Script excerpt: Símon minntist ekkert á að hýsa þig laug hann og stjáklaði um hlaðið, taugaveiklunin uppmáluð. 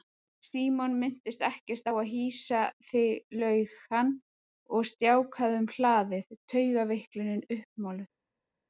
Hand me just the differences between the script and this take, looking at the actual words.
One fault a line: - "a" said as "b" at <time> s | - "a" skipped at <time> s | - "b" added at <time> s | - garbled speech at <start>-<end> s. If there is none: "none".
none